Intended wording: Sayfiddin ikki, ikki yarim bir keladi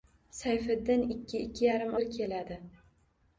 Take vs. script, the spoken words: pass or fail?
pass